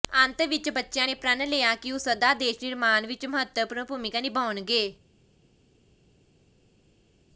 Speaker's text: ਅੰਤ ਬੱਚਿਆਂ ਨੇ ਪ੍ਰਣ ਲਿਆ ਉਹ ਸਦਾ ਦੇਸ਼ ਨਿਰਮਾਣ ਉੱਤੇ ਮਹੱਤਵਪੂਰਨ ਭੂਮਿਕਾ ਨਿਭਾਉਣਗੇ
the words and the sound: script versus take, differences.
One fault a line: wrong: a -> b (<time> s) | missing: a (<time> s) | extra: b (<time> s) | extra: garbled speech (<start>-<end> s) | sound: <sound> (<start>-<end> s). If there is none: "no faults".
extra: ਵਿੱਚ (0.4 s)
extra: ਕਿ (1.7 s)
wrong: ਉੱਤੇ -> ਵਿੱਚ (3.1 s)